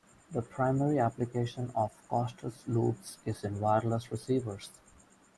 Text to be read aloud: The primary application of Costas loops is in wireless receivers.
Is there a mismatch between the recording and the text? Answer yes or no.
no